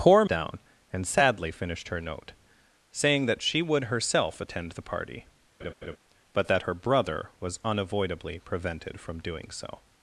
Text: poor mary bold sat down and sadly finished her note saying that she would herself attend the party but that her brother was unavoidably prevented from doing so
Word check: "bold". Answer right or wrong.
wrong